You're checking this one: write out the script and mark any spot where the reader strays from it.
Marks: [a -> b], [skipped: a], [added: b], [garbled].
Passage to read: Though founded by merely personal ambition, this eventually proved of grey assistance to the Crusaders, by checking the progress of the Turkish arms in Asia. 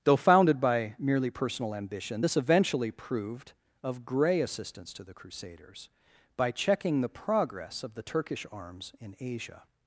Though founded by merely personal ambition, this eventually proved of grey assistance to the Crusaders, by checking the progress of the Turkish arms in Asia.